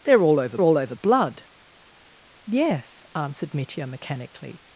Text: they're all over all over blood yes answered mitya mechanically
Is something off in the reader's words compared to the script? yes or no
no